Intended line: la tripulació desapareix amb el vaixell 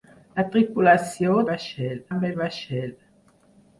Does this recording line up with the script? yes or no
no